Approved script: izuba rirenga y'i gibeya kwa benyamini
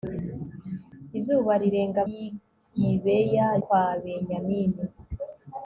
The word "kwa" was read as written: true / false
true